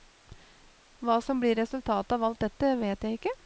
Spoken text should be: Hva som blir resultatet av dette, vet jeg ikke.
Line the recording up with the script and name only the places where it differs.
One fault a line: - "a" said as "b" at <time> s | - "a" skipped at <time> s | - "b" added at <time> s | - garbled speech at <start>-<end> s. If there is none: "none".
- "alt" added at 2.2 s